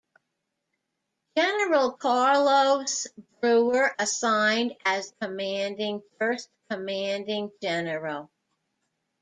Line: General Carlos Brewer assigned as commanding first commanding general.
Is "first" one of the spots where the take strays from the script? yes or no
no